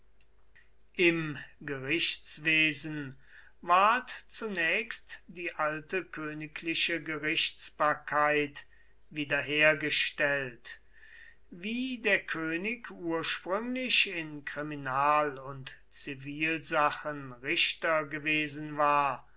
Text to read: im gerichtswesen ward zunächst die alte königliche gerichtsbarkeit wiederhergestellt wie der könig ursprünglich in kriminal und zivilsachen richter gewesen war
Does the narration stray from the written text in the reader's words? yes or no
no